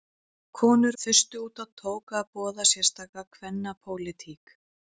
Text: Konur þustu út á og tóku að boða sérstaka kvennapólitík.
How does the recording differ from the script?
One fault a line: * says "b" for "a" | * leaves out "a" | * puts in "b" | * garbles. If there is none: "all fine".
all fine